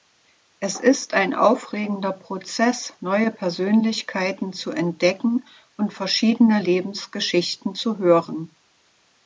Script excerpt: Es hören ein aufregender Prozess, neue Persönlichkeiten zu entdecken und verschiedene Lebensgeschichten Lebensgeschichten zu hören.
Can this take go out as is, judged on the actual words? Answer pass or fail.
fail